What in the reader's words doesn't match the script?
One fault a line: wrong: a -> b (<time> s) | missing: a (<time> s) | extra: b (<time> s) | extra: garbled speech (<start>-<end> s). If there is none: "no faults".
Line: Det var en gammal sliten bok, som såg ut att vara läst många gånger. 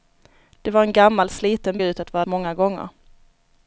missing: bok som såg (1.8 s)
missing: läst (2.2 s)